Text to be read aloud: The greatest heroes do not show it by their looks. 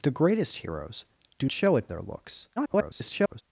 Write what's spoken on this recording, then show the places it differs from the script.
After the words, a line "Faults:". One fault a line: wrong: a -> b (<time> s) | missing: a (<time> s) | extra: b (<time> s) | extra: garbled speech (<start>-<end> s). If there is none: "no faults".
The greatest heroes do show it their looks. [garbled]
Faults:
missing: not (1.5 s)
missing: by (1.9 s)
extra: garbled speech (2.6-3.4 s)